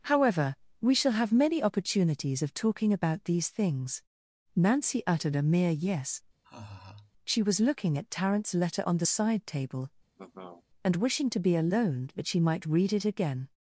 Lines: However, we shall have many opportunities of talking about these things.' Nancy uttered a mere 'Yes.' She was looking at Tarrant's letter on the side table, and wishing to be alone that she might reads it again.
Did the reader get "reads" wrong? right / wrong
wrong